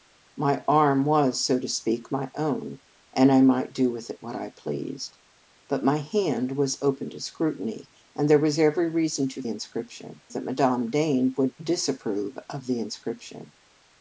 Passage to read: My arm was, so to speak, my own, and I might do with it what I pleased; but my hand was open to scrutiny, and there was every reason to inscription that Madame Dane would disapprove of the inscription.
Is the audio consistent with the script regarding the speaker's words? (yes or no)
yes